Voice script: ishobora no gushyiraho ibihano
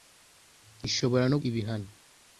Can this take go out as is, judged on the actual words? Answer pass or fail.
fail